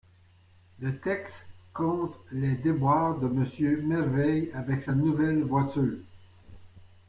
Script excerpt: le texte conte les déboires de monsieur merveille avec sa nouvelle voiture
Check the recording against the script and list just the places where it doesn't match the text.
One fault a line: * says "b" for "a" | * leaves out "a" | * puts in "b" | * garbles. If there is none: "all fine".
all fine